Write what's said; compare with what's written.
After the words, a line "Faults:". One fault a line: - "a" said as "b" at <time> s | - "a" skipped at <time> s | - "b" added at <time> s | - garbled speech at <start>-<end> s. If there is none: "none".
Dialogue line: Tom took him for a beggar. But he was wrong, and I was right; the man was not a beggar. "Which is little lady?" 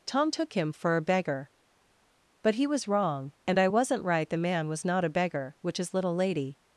Tom took him for a beggar. But he was wrong, and I wasn't right; the man was not a beggar. "Which is little lady?"
Faults:
- "was" said as "wasn't" at 3.7 s